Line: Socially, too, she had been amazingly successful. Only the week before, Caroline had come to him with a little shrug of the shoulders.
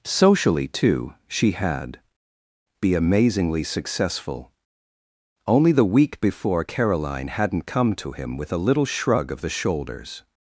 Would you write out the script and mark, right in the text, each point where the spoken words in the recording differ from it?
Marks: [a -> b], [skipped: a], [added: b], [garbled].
Socially, too, she had [been -> be] amazingly successful. Only the week before, Caroline [had -> hadn't] come to him with a little shrug of the shoulders.